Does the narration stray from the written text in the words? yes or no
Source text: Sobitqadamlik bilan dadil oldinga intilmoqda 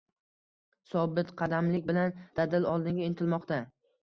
no